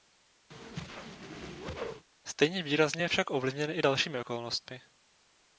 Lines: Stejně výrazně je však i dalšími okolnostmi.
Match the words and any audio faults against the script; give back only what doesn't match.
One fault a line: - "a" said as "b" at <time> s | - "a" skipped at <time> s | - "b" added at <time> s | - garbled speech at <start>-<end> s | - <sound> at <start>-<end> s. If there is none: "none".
- whoosh at 0.5-2.1 s
- "ovlivněn" added at 3.3 s